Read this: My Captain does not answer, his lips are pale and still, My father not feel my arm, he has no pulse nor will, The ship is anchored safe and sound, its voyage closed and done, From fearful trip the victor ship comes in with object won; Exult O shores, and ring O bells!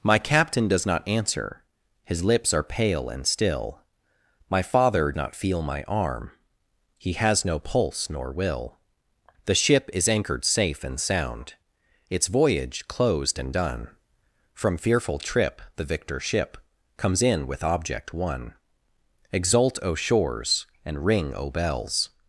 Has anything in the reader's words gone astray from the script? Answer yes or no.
no